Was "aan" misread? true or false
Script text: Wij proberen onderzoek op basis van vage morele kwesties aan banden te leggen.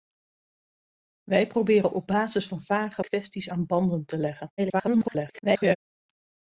false